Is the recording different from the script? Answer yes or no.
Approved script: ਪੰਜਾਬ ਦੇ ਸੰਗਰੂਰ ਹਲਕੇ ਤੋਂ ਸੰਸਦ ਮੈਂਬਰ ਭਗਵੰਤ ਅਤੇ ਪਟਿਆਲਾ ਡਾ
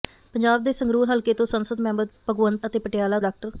no